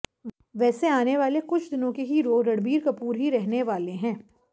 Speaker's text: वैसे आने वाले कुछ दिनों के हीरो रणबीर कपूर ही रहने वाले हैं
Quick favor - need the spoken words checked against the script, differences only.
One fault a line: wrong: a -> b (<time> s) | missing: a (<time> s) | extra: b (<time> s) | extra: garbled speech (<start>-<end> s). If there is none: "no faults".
no faults